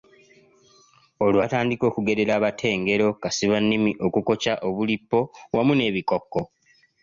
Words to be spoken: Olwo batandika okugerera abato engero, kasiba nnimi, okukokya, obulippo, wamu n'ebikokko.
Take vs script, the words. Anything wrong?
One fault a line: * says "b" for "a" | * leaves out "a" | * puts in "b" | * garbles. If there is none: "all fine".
all fine